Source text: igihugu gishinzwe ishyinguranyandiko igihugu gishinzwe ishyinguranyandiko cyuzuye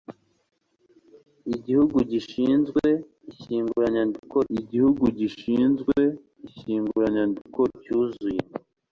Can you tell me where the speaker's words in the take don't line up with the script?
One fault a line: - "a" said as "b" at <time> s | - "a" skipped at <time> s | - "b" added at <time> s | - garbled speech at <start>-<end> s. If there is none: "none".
none